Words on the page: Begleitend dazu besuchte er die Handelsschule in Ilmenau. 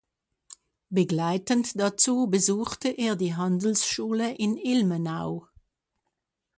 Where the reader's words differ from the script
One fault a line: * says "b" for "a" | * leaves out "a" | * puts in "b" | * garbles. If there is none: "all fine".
all fine